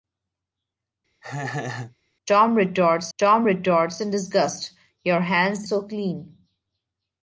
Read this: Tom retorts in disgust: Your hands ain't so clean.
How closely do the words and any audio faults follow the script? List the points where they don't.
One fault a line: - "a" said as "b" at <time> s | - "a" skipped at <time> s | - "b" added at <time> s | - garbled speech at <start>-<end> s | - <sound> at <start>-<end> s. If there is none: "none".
- laugh at 1.2-2.0 s
- "tom retorts" added at 3.2 s
- "ain't" skipped at 5.7 s